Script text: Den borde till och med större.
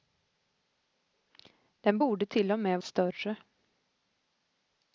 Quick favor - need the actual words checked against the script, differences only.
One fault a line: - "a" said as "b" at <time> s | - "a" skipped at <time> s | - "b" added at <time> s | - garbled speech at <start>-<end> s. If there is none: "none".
none